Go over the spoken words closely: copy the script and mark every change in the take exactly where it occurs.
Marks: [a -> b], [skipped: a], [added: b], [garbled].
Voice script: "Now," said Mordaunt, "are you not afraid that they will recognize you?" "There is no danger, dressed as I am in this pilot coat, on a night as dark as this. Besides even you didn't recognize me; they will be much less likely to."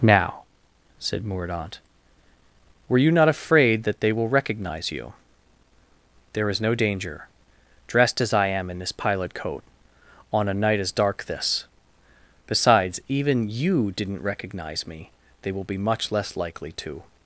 "Now," said Mordaunt, ["are -> were] you not afraid that they will recognize you?" "There is no danger, dressed as I am in this pilot coat, on a night as dark [skipped: as] this. Besides even you didn't recognize me; they will be much less likely to."